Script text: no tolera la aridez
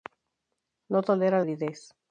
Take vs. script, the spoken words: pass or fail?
fail